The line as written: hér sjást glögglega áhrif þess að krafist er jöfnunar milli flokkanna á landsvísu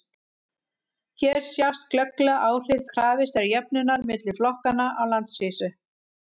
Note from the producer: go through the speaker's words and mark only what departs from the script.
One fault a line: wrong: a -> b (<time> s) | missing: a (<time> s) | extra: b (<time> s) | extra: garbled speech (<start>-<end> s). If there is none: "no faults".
missing: þess (2.8 s)